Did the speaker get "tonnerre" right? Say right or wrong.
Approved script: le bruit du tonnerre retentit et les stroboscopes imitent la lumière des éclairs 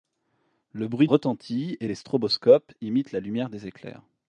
wrong